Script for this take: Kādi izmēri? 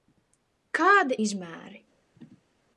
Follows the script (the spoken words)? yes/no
yes